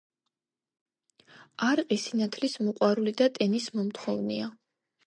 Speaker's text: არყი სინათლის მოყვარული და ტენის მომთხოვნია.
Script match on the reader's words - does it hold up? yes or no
yes